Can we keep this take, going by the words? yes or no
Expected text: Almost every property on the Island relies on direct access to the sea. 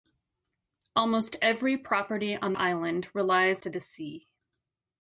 no